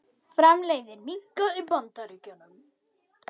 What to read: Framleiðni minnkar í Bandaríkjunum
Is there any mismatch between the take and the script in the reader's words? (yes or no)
no